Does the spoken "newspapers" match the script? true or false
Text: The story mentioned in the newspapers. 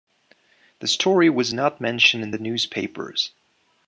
true